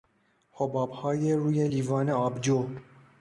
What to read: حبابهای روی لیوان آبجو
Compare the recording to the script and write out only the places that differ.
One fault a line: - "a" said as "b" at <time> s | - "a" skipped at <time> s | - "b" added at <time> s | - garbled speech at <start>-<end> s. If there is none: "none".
none